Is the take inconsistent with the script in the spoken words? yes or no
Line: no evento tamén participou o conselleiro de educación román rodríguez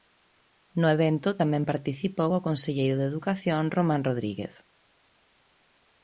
no